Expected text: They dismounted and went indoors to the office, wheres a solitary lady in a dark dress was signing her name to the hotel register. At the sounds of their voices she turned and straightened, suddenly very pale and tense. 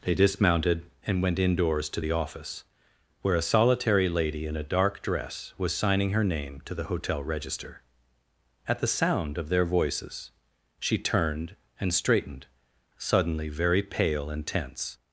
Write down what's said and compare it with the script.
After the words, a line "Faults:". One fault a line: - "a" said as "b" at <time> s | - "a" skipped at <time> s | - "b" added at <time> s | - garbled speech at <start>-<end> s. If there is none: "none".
They dismounted and went indoors to the office, where a solitary lady in a dark dress was signing her name to the hotel register. At the sound of their voices she turned and straightened, suddenly very pale and tense.
Faults:
- "wheres" said as "where" at 3.2 s
- "sounds" said as "sound" at 8.9 s